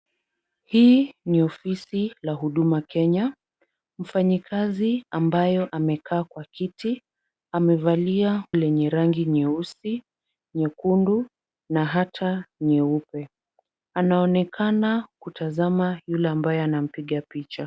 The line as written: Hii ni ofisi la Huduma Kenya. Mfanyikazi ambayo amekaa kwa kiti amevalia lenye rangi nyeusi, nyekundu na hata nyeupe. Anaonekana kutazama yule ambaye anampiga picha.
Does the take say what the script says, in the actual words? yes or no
yes